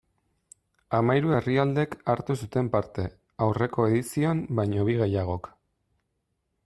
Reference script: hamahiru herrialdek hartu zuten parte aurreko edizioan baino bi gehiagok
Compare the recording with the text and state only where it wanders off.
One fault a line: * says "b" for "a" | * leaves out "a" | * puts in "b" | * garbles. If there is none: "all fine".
all fine